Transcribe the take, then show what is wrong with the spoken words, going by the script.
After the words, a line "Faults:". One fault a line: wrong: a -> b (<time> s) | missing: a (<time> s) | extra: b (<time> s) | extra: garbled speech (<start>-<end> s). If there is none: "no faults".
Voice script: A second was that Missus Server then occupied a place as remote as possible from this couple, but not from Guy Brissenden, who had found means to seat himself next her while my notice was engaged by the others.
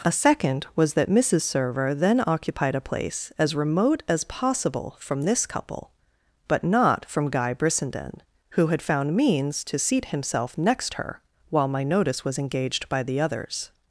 A second was that Missus Server then occupied a place as remote as possible from this couple, but not from Guy Brissenden, who had found means to seat himself next her while my notice was engaged by the others.
Faults:
no faults